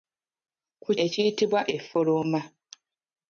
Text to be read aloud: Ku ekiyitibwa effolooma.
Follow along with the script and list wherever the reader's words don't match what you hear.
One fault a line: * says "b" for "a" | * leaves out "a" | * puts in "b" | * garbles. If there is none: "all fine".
all fine